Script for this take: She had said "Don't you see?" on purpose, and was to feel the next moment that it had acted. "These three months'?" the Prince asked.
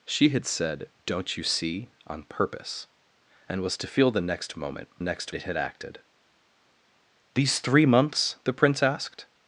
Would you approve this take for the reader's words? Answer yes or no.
no